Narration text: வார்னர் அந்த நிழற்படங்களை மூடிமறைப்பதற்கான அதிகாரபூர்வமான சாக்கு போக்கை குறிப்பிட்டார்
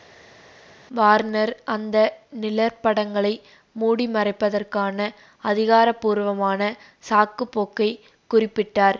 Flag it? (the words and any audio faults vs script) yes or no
no